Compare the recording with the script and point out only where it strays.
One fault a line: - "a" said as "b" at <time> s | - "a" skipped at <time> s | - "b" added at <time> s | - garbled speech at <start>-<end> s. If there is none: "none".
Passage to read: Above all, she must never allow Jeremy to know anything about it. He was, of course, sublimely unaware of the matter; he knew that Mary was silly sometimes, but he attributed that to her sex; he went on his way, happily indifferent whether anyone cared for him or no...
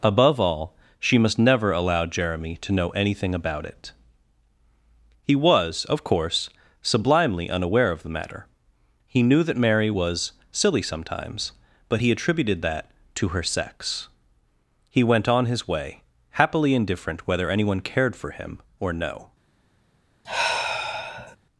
none